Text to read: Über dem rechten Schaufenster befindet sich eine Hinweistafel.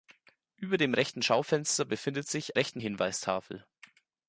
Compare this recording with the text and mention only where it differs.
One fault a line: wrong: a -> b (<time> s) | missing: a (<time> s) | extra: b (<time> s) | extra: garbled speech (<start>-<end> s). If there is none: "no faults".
wrong: eine -> rechten (2.5 s)